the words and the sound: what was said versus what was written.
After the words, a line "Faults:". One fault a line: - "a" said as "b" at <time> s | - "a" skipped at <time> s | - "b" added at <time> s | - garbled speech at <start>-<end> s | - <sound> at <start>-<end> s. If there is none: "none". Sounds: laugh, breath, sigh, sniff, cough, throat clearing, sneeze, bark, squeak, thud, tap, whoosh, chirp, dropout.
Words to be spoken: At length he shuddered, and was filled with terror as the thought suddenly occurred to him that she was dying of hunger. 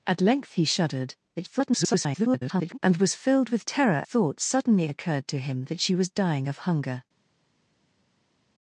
At length he shuddered, [garbled] and was filled with terror thought suddenly occurred to him that she was dying of hunger.
Faults:
- garbled speech at 1.4-2.8 s
- "as the" skipped at 4.0 s